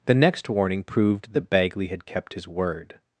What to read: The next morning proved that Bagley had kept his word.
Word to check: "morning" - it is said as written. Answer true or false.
false